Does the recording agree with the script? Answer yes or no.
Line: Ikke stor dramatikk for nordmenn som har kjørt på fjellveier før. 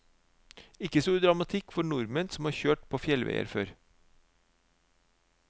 yes